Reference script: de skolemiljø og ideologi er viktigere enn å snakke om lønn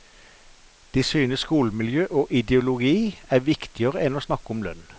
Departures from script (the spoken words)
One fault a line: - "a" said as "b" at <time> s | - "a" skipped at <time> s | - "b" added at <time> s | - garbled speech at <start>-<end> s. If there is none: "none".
- "synes" added at 1.0 s